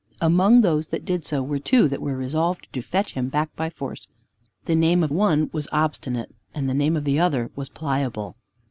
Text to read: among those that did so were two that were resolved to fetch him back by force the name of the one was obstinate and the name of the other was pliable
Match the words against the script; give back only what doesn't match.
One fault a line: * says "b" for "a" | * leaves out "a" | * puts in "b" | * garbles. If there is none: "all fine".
* leaves out "the"